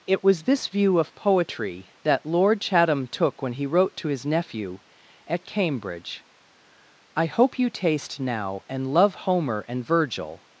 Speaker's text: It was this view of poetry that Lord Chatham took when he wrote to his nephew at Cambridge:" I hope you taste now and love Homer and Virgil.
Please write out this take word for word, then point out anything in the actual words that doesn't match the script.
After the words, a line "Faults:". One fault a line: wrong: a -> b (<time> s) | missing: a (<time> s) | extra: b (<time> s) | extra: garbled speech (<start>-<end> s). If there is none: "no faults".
It was this view of poetry that Lord Chatham took when he wrote to his nephew at Cambridge:" I hope you taste now and love Homer and Virgil.
Faults:
no faults